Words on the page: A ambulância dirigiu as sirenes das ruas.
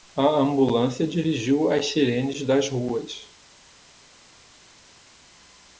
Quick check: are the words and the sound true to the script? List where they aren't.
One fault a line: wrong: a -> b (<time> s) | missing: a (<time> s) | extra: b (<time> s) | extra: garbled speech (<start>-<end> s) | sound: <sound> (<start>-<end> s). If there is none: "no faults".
no faults